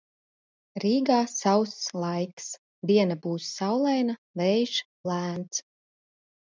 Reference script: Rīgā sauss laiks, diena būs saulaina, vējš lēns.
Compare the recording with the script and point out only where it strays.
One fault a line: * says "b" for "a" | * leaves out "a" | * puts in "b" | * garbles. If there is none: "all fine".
all fine